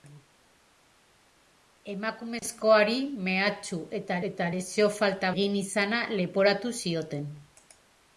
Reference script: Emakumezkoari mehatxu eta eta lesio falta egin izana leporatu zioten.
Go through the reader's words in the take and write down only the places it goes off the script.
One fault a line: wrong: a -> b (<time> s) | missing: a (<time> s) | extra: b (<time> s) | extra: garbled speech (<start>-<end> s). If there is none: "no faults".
no faults